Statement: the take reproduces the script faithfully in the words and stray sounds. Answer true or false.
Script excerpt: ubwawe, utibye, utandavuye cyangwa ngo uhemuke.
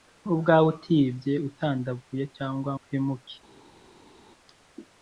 false